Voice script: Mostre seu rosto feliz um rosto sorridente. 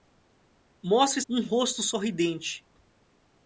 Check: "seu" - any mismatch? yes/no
yes